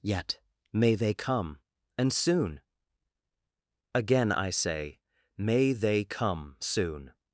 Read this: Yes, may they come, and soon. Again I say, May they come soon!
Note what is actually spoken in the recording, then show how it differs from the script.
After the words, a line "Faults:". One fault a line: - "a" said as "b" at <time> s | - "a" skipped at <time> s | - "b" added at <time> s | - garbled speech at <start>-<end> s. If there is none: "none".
Yet, may they come, and soon. Again I say, May they come soon!
Faults:
- "Yes" said as "Yet" at 0.0 s